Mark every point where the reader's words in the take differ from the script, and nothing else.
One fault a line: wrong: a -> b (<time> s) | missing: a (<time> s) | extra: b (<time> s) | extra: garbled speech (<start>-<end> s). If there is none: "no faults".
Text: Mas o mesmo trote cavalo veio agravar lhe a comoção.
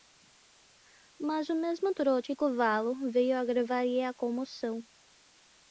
no faults